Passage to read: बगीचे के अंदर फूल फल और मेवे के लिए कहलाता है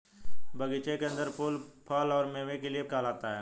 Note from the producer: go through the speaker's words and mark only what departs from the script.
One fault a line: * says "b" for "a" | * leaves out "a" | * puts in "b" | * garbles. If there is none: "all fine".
all fine